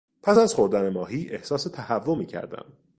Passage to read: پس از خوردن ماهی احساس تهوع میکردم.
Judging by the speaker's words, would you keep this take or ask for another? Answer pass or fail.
pass